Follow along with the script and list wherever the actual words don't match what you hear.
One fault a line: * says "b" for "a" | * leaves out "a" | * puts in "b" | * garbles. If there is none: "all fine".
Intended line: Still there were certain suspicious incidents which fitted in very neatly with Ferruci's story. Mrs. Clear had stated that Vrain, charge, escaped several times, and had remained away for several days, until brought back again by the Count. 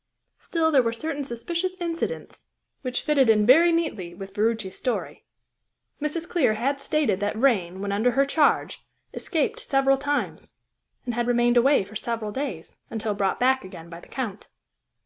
* puts in "when under her"